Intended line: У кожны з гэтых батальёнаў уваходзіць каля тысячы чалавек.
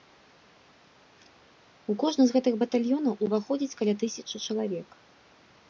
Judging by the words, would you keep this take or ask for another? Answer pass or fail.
pass